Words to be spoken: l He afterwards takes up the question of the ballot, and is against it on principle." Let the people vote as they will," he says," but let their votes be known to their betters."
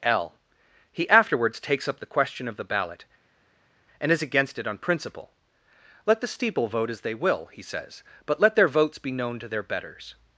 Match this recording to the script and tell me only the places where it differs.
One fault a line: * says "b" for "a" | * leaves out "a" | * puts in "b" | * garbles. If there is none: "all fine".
* says "steeple" for "people"